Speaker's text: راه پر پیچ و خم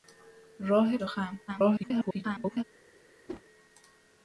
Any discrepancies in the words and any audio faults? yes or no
yes